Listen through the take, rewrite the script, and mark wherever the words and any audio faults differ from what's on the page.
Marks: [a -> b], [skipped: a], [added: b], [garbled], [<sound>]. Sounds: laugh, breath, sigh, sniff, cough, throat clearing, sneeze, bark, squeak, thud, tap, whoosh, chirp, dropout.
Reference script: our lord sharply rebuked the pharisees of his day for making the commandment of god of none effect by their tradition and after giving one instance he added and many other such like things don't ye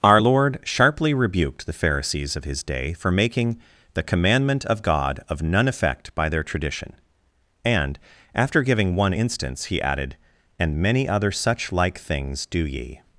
our lord sharply rebuked the pharisees of his day for making the commandment of god of none effect by their tradition and after giving one instance he added and many other such like things [don't -> do] ye